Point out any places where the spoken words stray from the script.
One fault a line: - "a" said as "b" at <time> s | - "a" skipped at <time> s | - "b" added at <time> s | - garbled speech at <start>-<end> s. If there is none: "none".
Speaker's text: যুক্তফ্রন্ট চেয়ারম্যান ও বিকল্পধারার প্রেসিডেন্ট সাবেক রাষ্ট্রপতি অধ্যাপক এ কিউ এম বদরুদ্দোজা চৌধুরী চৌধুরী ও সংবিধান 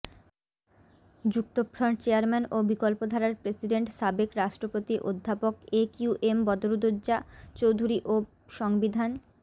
- "চৌধুরী" skipped at 8.0 s